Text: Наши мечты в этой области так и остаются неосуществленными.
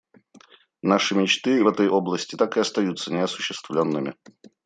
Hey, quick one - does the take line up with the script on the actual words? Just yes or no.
yes